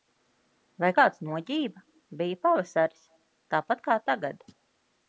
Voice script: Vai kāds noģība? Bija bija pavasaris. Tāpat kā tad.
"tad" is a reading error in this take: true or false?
true